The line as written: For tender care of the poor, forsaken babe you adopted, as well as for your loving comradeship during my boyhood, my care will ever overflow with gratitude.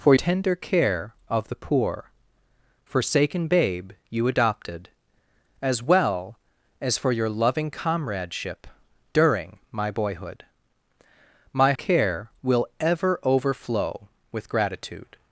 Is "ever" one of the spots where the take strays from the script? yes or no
no